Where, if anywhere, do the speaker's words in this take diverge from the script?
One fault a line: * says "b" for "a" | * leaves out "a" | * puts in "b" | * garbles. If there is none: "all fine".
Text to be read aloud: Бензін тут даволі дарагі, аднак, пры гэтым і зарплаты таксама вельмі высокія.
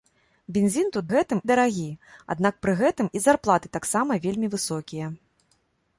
* says "гэтым" for "даволі"